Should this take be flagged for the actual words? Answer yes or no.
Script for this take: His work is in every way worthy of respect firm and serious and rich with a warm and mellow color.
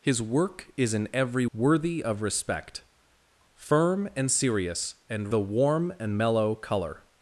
yes